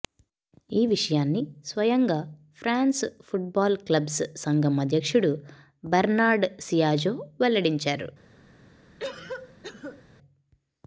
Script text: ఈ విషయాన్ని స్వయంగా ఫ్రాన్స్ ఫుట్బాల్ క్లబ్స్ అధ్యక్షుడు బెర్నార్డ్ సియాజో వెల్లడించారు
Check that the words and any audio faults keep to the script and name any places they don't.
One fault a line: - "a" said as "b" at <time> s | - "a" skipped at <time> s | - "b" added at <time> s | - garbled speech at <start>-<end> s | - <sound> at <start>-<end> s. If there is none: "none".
- "సంఘం" added at 4.3 s
- cough at 9.0-10.0 s